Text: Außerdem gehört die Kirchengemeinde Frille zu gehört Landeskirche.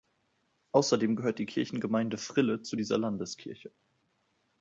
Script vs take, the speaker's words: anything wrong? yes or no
yes